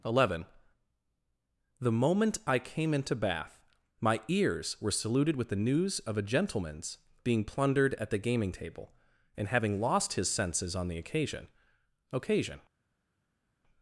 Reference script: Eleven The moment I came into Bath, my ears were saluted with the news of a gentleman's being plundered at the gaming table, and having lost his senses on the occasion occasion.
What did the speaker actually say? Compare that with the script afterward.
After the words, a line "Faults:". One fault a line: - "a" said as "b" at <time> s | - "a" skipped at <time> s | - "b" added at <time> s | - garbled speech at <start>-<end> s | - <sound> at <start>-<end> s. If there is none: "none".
Eleven The moment I came into Bath, my ears were saluted with the news of a gentleman's being plundered at the gaming table, and having lost his senses on the occasion occasion.
Faults:
none